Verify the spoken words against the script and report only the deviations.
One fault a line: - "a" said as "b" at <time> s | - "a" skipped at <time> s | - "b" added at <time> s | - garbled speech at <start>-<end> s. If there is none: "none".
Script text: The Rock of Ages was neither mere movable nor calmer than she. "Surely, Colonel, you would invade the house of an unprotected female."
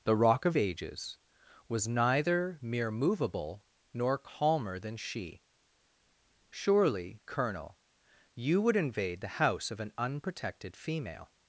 none